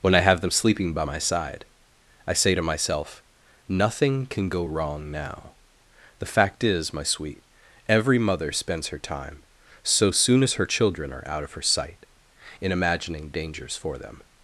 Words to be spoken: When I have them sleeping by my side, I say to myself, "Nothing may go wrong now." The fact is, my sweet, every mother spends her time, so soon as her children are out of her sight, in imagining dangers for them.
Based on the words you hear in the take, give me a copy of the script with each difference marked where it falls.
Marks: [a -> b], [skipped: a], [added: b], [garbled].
When I have them sleeping by my side, I say to myself, "Nothing [may -> can] go wrong now." The fact is, my sweet, every mother spends her time, so soon as her children are out of her sight, in imagining dangers for them.